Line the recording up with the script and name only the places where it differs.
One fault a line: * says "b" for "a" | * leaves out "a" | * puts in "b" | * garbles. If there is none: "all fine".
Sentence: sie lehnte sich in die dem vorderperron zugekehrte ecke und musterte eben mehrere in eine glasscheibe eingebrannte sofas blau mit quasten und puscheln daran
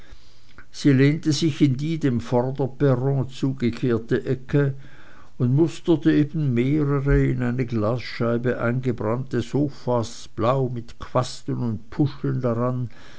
all fine